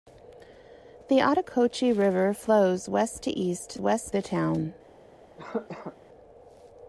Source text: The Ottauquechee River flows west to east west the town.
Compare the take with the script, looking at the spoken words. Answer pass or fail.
pass